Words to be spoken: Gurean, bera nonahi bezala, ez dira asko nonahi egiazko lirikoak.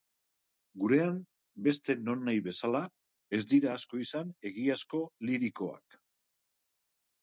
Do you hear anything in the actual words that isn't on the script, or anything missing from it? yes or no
yes